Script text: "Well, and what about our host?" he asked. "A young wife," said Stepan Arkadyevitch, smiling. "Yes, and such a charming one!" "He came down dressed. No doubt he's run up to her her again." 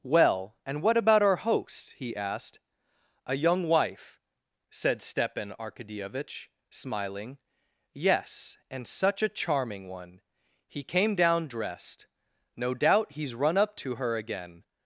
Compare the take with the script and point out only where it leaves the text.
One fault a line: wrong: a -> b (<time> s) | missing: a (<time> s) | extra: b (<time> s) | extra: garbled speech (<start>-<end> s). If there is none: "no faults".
missing: her (14.2 s)